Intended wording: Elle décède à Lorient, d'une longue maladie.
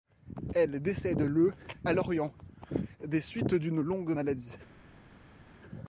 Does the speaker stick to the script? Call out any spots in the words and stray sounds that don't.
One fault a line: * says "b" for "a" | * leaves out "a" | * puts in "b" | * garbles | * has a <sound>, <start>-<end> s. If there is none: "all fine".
* puts in "le"
* puts in "des suites"